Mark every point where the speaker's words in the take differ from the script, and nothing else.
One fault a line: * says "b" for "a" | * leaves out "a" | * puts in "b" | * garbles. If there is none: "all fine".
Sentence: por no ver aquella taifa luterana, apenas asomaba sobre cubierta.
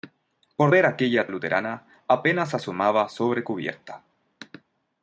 * leaves out "no"
* leaves out "taifa"